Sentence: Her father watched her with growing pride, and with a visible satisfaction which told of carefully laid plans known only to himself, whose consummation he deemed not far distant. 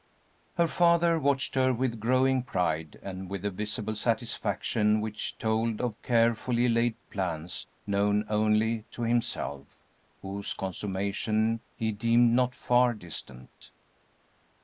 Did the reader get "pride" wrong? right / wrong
right